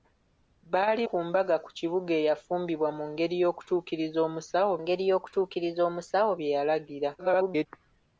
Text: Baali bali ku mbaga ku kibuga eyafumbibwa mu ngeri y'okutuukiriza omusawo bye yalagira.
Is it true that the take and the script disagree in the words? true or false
true